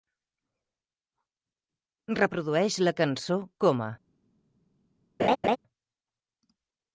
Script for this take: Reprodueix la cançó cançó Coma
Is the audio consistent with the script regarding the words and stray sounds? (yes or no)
no